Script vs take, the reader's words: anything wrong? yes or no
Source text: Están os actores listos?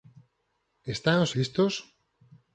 yes